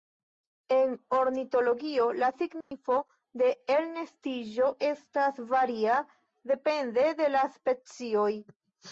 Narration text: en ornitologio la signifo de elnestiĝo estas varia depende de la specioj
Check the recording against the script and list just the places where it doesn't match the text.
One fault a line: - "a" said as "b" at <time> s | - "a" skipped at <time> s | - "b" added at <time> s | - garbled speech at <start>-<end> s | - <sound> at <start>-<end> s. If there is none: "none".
- dropout at 2.6-2.7 s